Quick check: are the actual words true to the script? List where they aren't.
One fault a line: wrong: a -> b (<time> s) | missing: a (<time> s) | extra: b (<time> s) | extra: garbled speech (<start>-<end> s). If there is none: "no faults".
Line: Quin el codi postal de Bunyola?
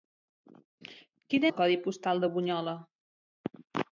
no faults